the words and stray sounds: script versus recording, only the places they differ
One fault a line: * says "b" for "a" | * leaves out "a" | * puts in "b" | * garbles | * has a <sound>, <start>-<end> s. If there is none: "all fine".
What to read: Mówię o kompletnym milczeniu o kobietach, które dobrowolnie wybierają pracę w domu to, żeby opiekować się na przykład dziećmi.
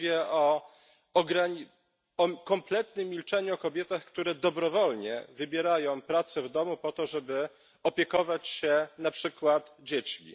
* puts in "po"